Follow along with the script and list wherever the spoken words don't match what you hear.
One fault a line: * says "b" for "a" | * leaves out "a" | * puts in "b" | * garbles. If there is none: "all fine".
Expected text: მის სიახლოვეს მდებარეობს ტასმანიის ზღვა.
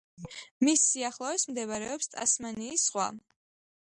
all fine